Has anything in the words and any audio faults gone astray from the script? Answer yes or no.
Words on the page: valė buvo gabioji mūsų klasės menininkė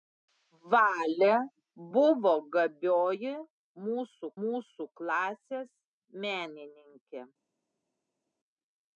yes